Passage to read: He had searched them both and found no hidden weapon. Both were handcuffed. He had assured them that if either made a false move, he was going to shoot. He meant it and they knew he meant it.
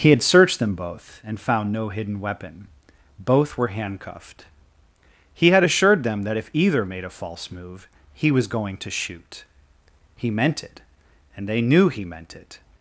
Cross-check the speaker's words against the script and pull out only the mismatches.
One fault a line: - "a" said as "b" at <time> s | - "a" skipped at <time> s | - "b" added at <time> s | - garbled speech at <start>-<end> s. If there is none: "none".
none